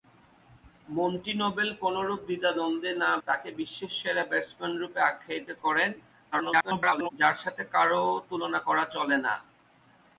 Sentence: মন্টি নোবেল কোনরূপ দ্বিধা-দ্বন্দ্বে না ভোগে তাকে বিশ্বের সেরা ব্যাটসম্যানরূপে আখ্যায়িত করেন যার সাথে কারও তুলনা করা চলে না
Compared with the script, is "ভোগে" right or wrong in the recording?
wrong